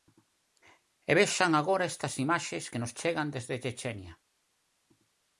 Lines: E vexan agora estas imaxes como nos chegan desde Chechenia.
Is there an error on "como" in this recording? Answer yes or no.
yes